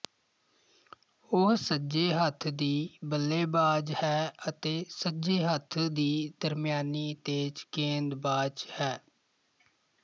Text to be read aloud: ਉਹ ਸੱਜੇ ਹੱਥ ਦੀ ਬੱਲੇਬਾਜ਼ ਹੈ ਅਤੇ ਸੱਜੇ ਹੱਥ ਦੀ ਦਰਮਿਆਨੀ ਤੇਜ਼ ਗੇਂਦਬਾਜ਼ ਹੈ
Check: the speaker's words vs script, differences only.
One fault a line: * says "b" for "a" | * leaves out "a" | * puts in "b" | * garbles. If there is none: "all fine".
all fine